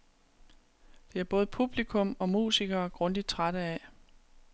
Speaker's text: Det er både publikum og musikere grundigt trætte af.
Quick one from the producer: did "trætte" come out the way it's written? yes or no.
yes